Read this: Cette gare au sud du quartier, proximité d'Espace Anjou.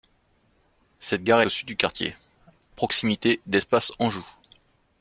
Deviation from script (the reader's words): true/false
false